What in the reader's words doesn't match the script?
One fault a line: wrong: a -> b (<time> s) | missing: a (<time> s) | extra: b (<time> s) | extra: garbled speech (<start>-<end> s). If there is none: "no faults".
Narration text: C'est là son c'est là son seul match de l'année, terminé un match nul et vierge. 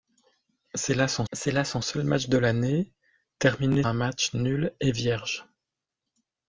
no faults